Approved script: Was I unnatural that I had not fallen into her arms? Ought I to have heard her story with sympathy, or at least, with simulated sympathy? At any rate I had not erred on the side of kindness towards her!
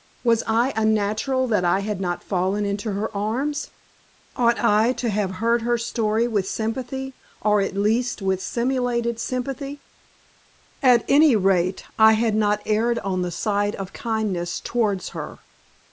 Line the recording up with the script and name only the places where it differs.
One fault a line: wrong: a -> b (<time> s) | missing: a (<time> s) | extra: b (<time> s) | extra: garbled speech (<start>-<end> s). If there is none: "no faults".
no faults